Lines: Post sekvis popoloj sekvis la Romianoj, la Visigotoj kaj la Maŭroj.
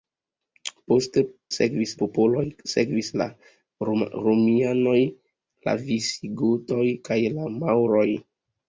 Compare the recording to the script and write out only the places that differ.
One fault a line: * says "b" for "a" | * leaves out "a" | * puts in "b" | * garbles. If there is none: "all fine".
all fine